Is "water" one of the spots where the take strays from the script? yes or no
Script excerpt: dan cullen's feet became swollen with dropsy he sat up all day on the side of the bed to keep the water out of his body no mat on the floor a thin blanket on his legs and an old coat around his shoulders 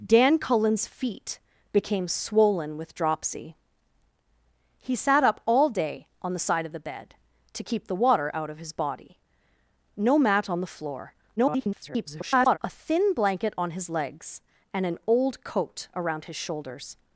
no